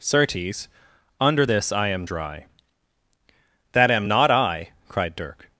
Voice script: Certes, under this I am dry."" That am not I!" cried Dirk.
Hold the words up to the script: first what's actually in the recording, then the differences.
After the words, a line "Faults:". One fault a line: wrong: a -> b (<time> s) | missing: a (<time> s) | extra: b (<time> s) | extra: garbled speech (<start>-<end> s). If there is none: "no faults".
Certes, under this I am dry."" That am not I!" cried Dirk.
Faults:
no faults